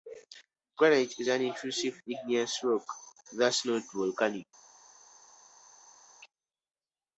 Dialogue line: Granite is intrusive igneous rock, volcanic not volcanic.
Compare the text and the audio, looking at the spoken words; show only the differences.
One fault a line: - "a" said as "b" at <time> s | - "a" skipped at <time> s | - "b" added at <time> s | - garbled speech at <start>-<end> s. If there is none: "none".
- "an" added at 1.3 s
- "volcanic" said as "thus" at 3.3 s